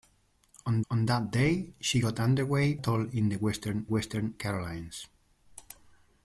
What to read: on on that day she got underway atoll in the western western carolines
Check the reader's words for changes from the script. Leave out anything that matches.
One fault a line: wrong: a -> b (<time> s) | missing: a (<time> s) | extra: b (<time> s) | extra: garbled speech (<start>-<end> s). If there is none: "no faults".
no faults